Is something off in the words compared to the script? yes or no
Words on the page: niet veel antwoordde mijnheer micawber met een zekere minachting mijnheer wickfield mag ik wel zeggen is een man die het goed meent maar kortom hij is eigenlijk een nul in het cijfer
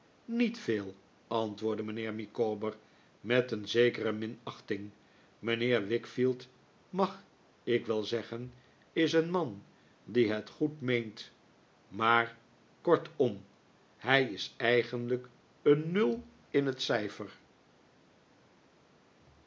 no